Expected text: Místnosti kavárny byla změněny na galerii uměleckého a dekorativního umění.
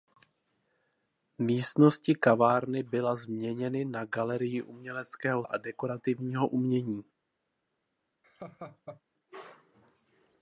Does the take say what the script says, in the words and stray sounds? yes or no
no